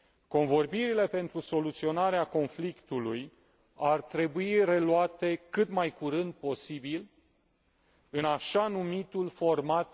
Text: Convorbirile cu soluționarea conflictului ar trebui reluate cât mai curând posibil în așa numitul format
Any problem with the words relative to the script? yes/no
yes